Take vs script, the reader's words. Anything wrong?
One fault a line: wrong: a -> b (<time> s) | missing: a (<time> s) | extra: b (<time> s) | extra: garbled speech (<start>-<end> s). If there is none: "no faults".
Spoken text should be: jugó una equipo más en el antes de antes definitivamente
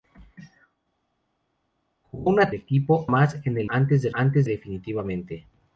no faults